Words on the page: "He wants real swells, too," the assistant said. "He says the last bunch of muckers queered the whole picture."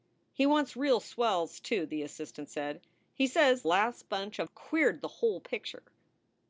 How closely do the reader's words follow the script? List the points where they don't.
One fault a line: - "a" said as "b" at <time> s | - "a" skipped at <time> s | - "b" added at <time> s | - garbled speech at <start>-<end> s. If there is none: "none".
- "the" skipped at 3.6 s
- "muckers" skipped at 4.5 s